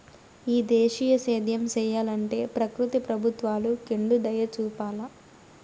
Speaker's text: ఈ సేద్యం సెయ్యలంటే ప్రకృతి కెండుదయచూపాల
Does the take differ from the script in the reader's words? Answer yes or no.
yes